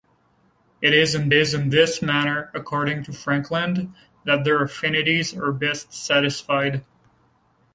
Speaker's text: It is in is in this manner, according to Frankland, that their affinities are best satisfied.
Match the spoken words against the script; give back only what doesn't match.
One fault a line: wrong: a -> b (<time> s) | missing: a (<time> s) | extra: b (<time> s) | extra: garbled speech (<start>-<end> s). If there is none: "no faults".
no faults